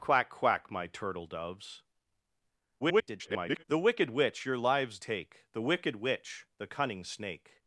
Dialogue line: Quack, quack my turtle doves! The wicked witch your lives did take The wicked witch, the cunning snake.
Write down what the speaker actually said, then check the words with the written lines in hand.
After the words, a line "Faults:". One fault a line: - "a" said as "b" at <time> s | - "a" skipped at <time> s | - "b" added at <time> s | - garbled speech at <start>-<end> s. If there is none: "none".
Quack, quack my turtle doves! [garbled] The wicked witch your lives take The wicked witch, the cunning snake.
Faults:
- garbled speech at 2.8-3.6 s
- "did" skipped at 5.0 s